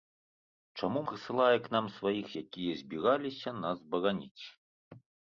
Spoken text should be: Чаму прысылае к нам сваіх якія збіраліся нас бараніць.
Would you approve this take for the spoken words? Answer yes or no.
yes